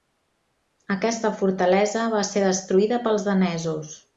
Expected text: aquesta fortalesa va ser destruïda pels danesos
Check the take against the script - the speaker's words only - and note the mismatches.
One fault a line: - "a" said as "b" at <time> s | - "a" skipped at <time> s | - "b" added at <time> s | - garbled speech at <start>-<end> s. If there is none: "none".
none